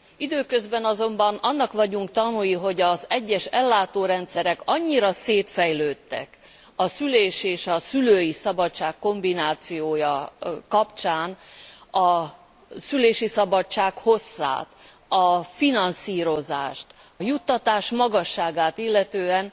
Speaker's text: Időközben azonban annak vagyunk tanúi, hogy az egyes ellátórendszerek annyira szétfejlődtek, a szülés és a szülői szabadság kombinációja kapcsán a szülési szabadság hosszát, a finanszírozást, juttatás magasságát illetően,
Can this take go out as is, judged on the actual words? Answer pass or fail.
pass